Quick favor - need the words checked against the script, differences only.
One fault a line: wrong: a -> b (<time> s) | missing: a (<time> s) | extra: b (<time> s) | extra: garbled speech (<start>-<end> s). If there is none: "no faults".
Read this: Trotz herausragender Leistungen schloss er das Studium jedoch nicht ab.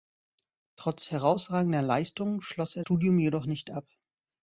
missing: das (2.8 s)